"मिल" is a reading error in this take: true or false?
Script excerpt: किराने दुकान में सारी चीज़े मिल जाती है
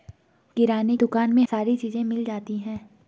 false